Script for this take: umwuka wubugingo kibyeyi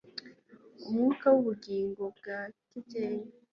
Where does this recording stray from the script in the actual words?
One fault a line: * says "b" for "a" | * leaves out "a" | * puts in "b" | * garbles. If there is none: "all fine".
* puts in "bwa"